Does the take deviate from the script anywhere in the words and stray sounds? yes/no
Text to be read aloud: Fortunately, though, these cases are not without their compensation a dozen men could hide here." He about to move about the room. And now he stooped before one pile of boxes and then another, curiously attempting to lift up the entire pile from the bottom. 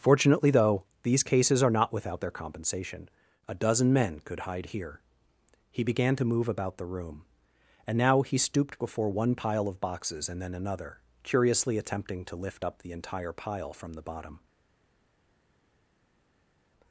yes